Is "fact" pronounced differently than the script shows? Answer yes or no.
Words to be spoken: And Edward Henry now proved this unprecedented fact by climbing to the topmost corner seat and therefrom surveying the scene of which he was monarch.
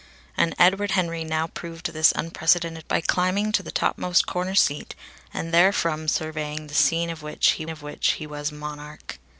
yes